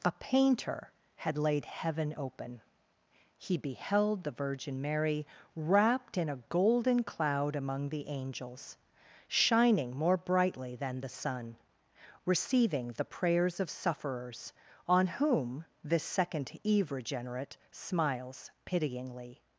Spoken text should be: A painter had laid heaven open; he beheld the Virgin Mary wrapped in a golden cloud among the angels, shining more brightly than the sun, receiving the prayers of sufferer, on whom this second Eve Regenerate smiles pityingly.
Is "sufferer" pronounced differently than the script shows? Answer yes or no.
yes